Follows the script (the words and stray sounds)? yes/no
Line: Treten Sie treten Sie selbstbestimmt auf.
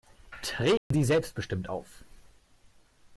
no